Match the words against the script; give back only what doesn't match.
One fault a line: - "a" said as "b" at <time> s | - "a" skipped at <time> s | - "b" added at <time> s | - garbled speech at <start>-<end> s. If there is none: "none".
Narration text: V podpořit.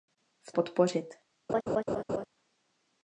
none